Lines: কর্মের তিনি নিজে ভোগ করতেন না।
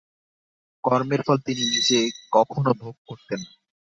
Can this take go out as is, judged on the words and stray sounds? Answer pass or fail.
fail